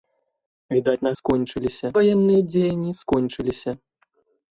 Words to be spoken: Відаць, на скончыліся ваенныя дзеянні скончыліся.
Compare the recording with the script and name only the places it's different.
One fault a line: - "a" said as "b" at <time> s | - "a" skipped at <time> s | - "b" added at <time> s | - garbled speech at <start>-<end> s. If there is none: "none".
none